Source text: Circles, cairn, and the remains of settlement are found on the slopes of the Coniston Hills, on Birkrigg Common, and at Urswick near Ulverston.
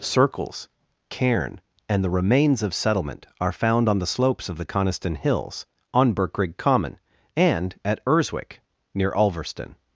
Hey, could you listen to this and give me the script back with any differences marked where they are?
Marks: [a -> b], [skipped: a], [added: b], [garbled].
Circles, cairn, and the remains of settlement are found on the slopes of the Coniston Hills, on Birkrigg Common, and at Urswick near Ulverston.